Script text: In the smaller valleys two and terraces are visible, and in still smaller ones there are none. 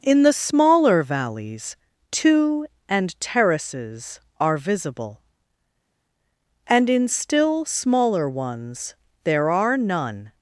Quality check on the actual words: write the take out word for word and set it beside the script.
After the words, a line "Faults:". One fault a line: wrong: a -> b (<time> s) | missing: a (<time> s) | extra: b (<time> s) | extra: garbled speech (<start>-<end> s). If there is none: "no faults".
In the smaller valleys two and terraces are visible, and in still smaller ones there are none.
Faults:
no faults